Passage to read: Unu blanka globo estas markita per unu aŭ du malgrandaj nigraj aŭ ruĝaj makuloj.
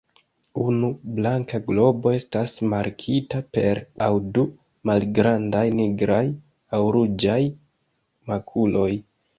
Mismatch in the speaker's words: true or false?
true